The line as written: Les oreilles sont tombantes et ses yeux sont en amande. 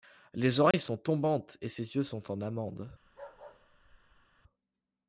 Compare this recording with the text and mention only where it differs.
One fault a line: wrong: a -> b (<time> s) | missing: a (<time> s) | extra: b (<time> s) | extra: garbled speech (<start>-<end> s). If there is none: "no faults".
no faults